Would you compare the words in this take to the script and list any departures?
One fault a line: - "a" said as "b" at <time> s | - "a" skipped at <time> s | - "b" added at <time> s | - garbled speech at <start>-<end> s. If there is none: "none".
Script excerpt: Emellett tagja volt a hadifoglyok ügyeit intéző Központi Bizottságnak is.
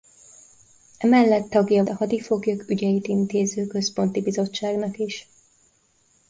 - "volt" skipped at 1.8 s